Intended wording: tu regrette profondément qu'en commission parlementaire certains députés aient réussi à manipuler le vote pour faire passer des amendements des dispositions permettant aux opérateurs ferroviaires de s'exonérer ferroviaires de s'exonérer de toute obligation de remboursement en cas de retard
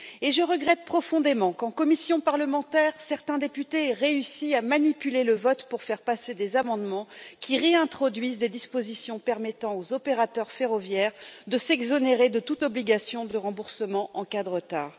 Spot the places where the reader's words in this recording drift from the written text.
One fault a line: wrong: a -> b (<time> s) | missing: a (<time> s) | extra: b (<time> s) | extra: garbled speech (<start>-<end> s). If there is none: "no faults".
wrong: tu -> je (0.2 s)
extra: qui réintroduisent (7.4 s)
missing: ferroviaires de s'exonérer (12.3 s)